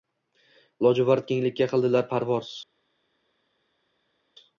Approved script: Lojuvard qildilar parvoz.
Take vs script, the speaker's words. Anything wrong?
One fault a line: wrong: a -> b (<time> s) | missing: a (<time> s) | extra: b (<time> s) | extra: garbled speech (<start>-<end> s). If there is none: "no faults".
extra: kenglikka (1.3 s)